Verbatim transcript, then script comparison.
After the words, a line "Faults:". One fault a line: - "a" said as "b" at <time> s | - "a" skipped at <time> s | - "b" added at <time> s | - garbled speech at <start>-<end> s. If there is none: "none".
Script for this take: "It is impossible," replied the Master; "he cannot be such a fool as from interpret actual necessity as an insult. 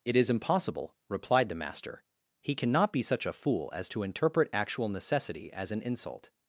"It is impossible," replied the Master; "he cannot be such a fool as to interpret actual necessity as an insult.
Faults:
- "from" said as "to" at 3.9 s